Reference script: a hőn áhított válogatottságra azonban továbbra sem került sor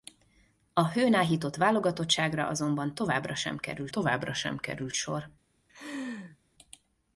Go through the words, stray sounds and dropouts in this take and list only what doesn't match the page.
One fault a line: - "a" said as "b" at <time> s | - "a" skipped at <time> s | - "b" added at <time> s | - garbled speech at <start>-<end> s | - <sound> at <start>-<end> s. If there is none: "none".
- "továbbra sem került" added at 3.9 s
- laugh at 5.7-6.4 s